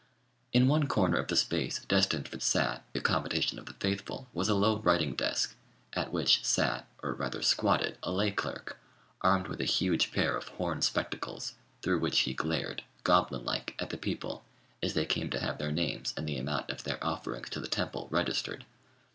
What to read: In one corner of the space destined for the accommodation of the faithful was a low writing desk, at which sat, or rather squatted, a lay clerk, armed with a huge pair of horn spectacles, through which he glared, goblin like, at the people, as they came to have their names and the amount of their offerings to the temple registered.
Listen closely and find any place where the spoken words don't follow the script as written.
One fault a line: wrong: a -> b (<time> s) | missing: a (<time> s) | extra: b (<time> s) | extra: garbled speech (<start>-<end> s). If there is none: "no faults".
wrong: the -> sat (2.4 s)